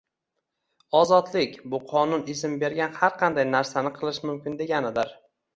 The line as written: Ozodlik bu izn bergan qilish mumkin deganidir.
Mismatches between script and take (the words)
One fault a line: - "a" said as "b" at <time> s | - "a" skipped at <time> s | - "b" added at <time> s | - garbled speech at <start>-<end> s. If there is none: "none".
- "qonun" added at 1.9 s
- "har qanday narsani" added at 3.0 s